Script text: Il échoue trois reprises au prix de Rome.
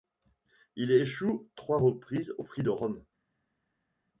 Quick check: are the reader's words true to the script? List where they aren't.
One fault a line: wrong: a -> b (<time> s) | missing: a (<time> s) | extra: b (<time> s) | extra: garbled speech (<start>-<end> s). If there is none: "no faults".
no faults